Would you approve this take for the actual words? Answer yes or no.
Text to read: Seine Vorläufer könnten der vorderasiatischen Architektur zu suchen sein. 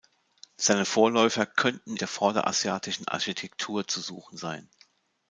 yes